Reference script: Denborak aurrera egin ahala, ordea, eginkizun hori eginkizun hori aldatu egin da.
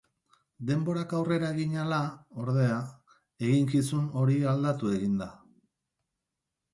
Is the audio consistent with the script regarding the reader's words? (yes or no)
no